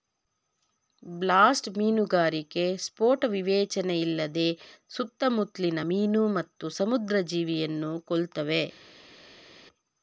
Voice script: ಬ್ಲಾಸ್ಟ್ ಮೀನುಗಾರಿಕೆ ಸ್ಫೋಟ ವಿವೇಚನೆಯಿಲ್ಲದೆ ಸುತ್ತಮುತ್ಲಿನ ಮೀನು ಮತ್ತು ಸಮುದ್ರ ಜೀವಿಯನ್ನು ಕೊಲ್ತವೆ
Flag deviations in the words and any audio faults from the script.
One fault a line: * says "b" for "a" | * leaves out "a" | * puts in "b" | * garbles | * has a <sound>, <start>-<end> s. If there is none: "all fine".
all fine